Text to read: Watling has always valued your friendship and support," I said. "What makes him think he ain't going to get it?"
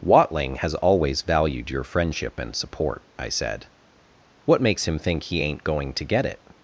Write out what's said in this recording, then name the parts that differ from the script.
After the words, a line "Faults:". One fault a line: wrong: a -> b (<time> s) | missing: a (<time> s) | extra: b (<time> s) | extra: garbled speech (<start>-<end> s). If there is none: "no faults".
Watling has always valued your friendship and support," I said. "What makes him think he ain't going to get it?"
Faults:
no faults